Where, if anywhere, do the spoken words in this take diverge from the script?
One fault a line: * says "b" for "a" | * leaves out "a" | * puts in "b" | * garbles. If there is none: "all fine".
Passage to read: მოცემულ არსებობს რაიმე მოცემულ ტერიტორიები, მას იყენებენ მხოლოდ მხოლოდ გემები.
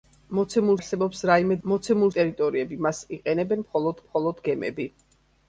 all fine